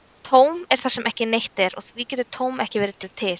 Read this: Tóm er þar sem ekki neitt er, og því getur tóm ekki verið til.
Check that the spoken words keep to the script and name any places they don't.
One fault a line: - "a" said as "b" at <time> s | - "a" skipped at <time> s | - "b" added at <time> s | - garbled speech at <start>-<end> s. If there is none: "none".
- "verið" added at 3.0 s